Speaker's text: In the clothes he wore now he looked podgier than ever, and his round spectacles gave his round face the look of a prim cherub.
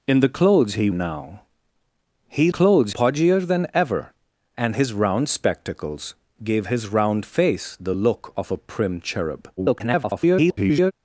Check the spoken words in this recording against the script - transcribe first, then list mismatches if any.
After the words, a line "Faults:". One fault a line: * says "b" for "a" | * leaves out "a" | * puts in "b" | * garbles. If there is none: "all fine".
In the clothes he now he clothes podgier than ever, and his round spectacles gave his round face the look of a prim cherub. [garbled]
Faults:
* leaves out "wore"
* says "clothes" for "looked"
* garbles